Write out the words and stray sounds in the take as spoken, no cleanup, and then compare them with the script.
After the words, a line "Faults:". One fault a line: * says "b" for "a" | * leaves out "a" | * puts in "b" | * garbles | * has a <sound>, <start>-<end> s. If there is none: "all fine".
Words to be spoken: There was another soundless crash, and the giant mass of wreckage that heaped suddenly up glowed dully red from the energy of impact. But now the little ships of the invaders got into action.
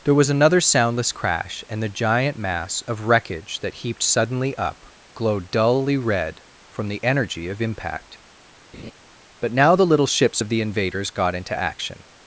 There was another soundless crash, and the giant mass of wreckage that heaped suddenly up glowed dully red from the energy of impact. But now the little ships of the invaders got into action.
Faults:
* has a laugh, 8.7-8.9 s